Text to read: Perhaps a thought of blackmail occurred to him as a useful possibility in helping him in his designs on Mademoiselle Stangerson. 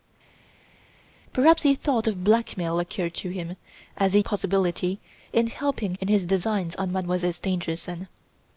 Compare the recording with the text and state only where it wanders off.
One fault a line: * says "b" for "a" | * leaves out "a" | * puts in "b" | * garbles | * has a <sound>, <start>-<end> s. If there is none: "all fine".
* leaves out "useful"
* leaves out "him"